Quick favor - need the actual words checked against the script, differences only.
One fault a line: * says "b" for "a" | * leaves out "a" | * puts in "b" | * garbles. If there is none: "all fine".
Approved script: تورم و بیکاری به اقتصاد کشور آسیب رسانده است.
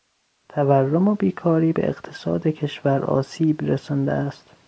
all fine